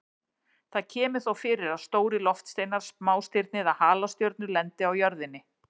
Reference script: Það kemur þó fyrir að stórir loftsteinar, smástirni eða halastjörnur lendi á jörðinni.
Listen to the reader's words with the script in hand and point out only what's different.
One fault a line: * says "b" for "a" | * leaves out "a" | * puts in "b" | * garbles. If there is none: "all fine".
all fine